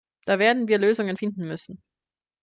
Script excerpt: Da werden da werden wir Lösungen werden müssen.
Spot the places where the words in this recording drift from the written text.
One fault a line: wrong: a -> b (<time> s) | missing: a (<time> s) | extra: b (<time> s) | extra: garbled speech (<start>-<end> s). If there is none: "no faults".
missing: da werden (0.7 s)
wrong: werden -> finden (1.1 s)